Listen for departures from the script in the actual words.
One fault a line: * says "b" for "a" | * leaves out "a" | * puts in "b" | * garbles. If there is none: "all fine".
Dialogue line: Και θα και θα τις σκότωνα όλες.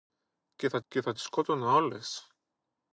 all fine